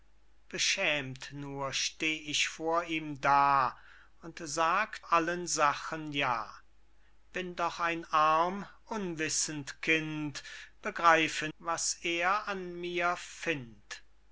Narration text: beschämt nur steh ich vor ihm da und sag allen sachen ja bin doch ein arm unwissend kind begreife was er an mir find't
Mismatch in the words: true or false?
false